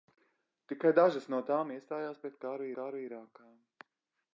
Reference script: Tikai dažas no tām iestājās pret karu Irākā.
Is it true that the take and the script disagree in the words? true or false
true